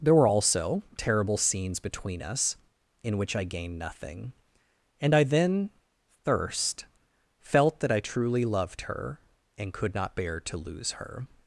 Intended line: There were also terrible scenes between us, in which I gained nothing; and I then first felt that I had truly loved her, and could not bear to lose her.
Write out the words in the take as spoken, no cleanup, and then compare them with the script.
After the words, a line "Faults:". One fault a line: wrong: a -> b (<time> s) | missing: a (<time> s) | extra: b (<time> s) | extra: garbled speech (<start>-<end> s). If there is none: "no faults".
There were also terrible scenes between us, in which I gained nothing; and I then thirst felt that I truly loved her, and could not bear to lose her.
Faults:
wrong: first -> thirst (6.2 s)
missing: had (8.0 s)